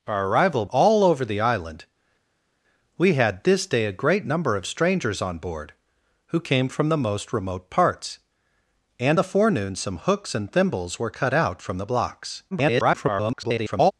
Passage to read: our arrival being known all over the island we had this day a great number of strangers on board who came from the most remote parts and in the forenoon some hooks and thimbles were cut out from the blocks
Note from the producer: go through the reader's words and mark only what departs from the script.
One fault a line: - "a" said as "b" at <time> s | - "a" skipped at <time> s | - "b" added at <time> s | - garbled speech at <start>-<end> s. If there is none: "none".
- "being known" skipped at 0.7 s
- "in" skipped at 9.2 s
- garbled speech at 12.5-13.9 s